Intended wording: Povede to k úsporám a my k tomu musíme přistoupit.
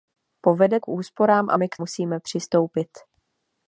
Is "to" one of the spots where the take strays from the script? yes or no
yes